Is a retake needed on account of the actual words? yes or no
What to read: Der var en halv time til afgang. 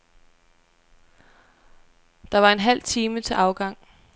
no